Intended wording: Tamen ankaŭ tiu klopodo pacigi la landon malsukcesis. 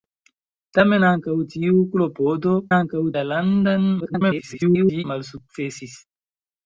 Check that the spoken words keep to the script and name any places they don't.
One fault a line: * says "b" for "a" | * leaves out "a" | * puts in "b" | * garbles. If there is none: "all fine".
* says "ankaŭ" for "pacigi"
* garbles